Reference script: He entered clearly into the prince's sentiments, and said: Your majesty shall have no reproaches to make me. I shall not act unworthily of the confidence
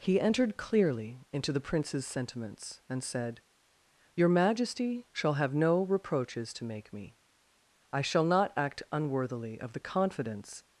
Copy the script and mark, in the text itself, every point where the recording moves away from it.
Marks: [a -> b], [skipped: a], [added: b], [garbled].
He entered clearly into the prince's sentiments, and said: Your majesty shall have no reproaches to make me. I shall not act unworthily of the confidence